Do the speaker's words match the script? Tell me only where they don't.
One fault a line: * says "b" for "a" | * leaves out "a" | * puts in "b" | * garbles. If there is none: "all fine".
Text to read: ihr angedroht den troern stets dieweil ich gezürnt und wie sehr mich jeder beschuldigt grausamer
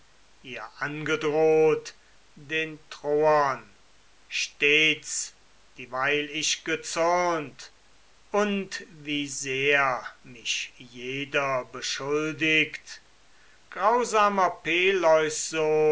all fine